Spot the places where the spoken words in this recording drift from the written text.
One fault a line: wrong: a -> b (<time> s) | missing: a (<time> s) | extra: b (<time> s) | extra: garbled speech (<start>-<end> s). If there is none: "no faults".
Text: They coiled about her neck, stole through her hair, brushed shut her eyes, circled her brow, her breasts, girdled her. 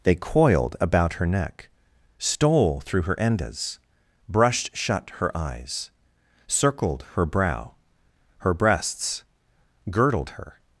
wrong: hair -> endas (3.2 s)